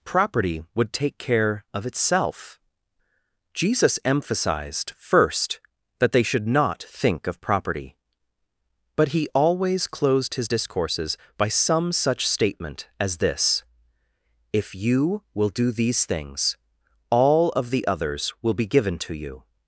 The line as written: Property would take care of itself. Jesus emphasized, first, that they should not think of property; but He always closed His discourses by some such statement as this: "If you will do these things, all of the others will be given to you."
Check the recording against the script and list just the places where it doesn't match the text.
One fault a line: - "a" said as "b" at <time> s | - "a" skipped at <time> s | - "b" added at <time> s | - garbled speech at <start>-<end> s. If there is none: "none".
none